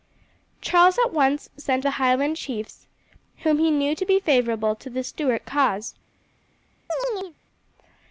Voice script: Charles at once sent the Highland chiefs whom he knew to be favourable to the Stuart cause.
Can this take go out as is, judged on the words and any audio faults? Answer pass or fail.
fail